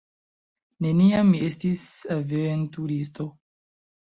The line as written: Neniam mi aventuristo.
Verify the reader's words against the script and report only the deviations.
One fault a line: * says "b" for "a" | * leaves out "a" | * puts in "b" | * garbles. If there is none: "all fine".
* puts in "estis"